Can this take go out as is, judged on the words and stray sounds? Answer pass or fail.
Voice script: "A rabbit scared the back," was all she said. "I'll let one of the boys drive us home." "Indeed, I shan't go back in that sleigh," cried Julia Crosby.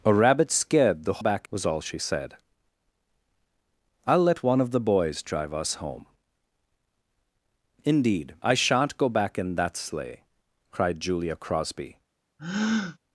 fail